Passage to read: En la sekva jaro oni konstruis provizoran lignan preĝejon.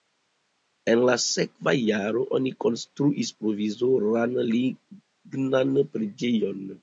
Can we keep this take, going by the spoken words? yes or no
yes